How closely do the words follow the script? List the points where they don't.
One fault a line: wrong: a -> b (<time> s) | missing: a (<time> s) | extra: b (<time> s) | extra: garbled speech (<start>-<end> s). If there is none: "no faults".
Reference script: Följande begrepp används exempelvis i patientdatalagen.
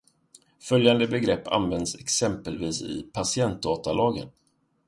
no faults